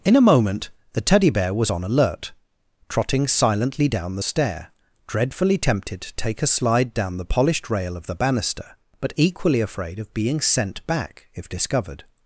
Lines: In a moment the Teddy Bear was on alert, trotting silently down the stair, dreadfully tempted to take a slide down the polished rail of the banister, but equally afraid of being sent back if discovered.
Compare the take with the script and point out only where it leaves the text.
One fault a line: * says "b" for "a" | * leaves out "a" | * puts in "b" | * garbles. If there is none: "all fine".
all fine